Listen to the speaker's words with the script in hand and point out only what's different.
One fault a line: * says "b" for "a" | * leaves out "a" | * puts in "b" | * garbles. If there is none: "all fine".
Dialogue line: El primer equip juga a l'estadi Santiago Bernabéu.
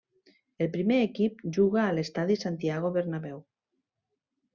all fine